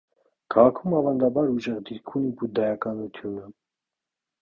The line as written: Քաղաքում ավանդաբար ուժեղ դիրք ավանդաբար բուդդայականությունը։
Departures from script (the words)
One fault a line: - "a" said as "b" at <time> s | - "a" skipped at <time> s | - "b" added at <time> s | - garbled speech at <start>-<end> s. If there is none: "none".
- "ավանդաբար" said as "ունի" at 2.2 s